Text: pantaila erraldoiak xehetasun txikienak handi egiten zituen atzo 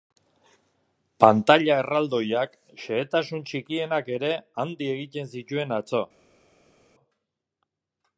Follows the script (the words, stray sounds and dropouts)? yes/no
no